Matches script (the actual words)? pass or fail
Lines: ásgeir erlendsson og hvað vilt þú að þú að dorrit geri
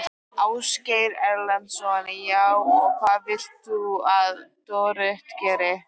fail